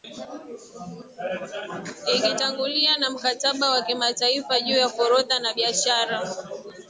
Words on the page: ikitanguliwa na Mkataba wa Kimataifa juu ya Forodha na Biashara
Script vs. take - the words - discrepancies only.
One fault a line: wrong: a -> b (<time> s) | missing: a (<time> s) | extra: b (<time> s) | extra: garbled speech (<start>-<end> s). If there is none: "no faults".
no faults